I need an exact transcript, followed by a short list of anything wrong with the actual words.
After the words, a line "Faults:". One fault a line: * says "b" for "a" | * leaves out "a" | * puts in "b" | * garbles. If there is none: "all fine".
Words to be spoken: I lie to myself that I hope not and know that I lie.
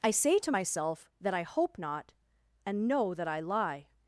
I say to myself that I hope not and know that I lie.
Faults:
* says "say" for "lie"